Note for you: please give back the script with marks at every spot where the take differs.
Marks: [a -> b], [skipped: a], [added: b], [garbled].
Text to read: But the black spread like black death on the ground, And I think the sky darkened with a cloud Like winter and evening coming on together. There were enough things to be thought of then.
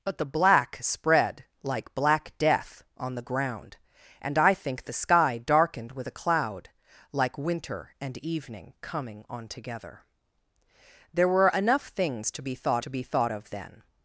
But the black spread like black death on the ground, And I think the sky darkened with a cloud Like winter and evening coming on together. There were enough things to be thought [added: to be thought] of then.